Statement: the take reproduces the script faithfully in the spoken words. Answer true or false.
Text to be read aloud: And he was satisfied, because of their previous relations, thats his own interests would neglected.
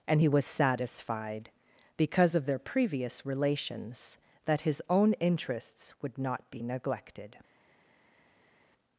false